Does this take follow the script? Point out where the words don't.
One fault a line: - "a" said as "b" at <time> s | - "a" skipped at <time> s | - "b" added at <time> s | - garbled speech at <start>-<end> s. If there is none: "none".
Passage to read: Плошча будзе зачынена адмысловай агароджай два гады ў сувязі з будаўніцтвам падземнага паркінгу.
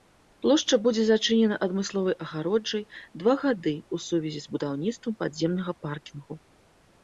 none